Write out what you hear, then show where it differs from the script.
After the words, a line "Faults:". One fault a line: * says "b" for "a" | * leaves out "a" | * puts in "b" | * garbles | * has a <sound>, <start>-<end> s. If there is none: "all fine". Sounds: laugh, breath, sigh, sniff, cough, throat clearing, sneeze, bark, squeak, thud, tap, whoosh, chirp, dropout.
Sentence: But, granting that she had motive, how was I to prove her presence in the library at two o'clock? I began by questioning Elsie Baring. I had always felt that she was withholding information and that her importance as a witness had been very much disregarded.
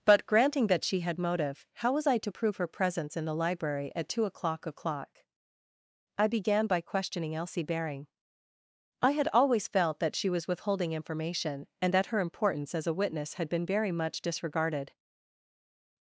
But, granting that she had motive, how was I to prove her presence in the library at two o'clock o'clock? I began by questioning Elsie Baring. I had always felt that she was withholding information and that her importance as a witness had been very much disregarded.
Faults:
* puts in "o'clock"